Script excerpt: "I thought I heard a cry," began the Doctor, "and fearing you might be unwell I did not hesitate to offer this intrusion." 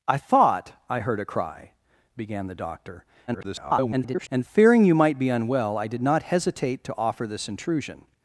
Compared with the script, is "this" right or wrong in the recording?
right